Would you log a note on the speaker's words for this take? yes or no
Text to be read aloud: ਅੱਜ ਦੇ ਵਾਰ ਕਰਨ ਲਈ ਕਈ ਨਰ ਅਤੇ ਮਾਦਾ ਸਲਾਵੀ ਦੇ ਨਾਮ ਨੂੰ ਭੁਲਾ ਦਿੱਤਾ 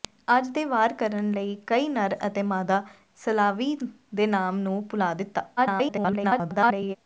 yes